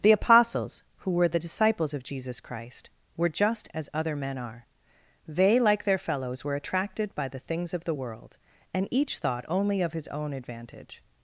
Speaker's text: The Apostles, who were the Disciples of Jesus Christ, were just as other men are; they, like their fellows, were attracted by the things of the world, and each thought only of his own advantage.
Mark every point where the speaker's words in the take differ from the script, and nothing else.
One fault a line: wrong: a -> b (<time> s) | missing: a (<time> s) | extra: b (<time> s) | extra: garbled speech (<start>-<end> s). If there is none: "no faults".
no faults